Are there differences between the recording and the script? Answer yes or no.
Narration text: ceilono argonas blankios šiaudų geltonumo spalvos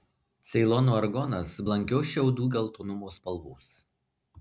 no